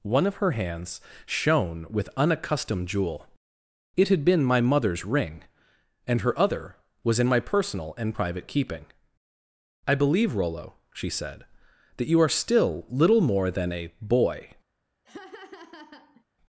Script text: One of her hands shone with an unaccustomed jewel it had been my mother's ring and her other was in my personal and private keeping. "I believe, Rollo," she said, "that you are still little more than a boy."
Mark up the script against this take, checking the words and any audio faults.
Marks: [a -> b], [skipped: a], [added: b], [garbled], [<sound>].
One of her hands shone with [skipped: an] unaccustomed jewel it had been my mother's ring and her other was in my personal and private keeping. "I believe, Rollo," she said, "that you are still little more than a boy." [laugh]